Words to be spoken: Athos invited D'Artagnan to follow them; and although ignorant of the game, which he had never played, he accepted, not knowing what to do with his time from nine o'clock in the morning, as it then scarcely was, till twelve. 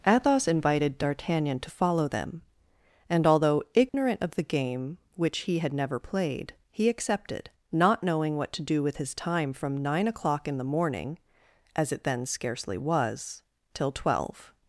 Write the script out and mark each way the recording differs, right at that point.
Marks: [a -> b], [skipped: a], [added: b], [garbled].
Athos invited D'Artagnan to follow them; and although ignorant of the game, which he had never played, he accepted, not knowing what to do with his time from nine o'clock in the morning, as it then scarcely was, till twelve.